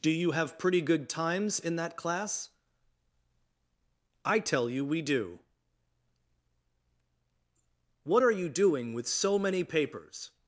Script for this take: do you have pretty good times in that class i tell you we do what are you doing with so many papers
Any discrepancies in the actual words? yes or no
no